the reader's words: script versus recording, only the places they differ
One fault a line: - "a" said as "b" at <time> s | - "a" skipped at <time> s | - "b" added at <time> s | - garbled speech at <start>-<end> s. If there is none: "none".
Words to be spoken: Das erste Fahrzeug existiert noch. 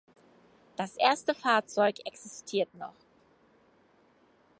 none